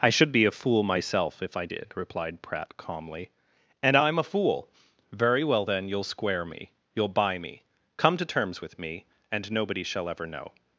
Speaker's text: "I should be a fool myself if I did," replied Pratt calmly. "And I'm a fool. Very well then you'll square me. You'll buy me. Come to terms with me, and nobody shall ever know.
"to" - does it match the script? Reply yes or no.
yes